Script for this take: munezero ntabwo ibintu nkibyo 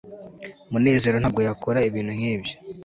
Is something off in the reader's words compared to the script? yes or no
yes